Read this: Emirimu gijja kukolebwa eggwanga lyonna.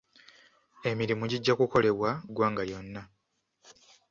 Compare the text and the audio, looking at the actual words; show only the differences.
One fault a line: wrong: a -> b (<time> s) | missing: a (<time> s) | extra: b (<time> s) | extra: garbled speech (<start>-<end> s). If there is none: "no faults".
no faults